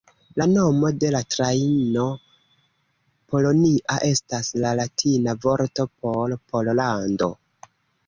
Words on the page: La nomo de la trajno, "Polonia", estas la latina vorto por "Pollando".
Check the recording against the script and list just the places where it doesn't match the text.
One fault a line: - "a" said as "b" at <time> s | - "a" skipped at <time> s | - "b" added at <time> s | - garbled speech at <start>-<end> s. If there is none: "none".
none